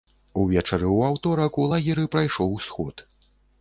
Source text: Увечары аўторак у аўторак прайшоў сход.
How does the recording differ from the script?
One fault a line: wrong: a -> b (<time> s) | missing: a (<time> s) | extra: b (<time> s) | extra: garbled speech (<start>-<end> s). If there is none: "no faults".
extra: ў (0.9 s)
wrong: аўторак -> лагеры (1.8 s)